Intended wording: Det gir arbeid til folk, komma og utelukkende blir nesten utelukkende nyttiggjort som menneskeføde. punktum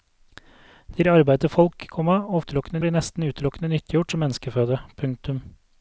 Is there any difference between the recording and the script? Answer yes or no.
no